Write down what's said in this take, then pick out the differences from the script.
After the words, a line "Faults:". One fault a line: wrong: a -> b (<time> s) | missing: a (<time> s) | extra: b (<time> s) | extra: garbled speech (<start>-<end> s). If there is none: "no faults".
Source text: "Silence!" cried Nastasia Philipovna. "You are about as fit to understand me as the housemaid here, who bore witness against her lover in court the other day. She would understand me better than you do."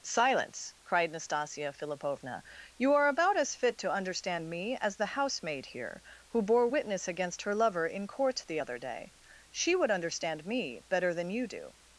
"Silence!" cried Nastasia Philipovna. "You are about as fit to understand me as the housemaid here, who bore witness against her lover in court the other day. She would understand me better than you do."
Faults:
no faults